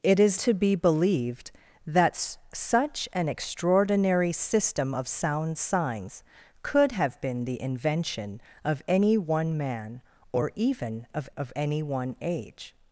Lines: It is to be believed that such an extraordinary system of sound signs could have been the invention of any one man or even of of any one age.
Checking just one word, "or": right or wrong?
right